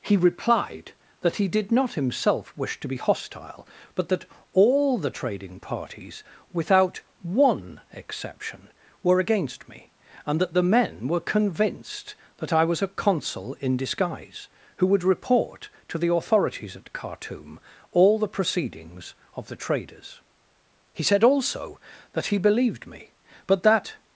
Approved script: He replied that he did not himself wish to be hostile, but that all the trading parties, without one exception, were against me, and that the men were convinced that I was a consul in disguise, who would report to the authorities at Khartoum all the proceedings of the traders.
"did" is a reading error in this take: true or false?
false